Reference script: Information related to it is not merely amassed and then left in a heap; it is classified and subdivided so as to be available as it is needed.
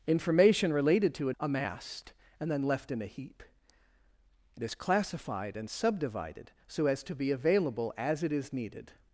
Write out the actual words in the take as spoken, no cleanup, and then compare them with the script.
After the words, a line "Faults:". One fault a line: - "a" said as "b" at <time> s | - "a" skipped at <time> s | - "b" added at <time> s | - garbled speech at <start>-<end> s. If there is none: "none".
Information related to it amassed and then left in a heap; it is classified and subdivided so as to be available as it is needed.
Faults:
- "is not merely" skipped at 1.4 s